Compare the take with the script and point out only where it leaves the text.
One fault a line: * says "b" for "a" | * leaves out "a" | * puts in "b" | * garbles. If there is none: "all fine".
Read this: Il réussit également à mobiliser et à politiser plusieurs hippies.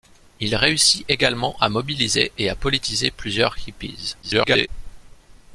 * garbles